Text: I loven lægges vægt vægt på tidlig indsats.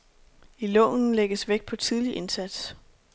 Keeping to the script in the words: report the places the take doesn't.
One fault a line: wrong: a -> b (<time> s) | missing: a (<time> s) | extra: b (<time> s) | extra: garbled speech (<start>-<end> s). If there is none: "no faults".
missing: vægt (1.6 s)